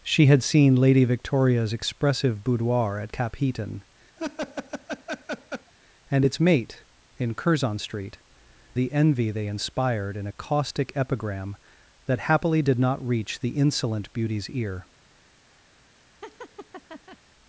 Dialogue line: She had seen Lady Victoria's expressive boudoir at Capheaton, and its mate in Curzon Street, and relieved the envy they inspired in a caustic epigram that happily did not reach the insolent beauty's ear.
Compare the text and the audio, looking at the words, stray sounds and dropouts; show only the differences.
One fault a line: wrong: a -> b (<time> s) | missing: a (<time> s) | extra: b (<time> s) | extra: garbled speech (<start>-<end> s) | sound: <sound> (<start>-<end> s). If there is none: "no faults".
sound: laugh (4.2-5.7 s)
missing: and relieved (8.2 s)
sound: laugh (16.2-17.2 s)